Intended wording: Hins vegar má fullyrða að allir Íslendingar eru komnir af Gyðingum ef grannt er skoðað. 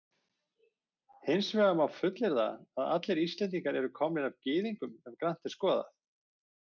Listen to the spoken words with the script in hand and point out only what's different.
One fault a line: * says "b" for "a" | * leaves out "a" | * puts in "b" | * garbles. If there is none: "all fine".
all fine